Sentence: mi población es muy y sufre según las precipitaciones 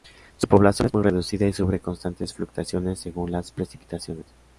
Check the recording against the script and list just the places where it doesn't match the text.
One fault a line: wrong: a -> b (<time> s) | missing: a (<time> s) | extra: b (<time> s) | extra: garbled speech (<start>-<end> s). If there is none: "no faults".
wrong: mi -> su (0.3 s)
extra: reducida (1.0 s)
extra: constantes fluctuaciones (1.8 s)